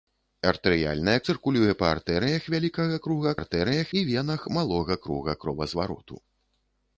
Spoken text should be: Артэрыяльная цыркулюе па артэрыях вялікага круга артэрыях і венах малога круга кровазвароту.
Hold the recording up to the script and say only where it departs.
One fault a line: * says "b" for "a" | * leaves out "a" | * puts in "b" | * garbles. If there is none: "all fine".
all fine